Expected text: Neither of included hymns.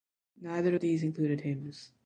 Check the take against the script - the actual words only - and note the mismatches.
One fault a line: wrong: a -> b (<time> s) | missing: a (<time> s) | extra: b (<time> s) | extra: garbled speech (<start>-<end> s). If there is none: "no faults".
extra: these (0.8 s)